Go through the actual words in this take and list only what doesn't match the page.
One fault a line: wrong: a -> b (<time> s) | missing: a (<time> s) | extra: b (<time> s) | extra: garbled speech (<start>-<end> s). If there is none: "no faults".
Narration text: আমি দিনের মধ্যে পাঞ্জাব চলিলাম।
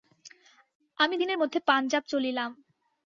no faults